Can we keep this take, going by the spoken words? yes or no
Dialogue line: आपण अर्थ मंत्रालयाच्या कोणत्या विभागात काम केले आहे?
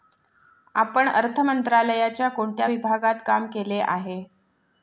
yes